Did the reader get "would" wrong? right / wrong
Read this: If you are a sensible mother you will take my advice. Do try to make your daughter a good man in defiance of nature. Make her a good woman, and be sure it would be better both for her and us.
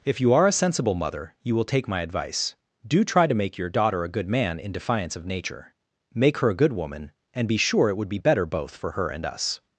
right